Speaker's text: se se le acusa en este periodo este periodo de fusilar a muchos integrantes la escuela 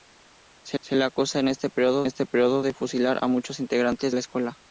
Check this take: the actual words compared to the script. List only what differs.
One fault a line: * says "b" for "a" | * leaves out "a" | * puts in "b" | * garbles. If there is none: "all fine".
all fine